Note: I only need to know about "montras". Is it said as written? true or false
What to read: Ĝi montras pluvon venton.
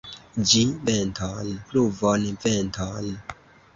false